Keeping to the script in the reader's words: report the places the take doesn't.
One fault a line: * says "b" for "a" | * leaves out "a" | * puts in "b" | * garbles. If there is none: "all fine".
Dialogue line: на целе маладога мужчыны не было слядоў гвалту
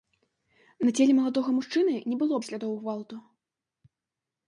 all fine